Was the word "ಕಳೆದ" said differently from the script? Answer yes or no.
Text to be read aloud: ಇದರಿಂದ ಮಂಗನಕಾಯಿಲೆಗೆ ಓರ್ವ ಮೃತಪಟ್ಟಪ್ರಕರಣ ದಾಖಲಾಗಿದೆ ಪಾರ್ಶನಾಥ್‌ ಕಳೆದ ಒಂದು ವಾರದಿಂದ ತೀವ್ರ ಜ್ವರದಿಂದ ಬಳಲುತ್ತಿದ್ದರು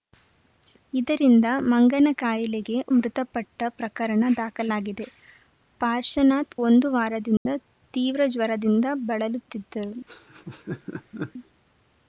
yes